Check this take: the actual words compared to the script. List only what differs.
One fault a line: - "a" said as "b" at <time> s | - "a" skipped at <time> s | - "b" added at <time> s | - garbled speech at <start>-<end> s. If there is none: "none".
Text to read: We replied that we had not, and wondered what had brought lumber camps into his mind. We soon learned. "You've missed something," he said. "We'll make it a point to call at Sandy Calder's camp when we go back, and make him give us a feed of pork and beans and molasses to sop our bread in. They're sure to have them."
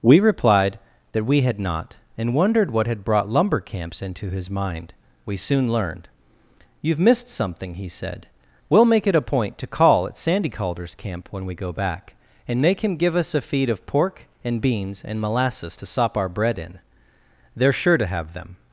none